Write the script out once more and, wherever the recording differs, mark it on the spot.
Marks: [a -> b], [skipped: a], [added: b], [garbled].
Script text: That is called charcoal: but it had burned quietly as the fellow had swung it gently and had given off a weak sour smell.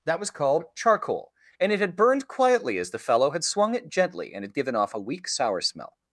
That [is -> was] called charcoal: [but -> and] it had burned quietly as the fellow had swung it gently and had given off a weak sour smell.